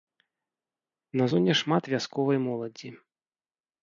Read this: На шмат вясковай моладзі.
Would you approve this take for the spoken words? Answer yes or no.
no